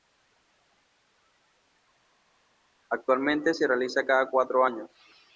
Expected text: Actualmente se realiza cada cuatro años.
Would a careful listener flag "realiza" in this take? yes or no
no